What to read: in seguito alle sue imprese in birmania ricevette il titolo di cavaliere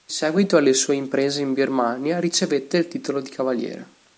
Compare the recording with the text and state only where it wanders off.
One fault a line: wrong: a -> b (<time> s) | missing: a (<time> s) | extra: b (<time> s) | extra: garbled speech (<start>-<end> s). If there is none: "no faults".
no faults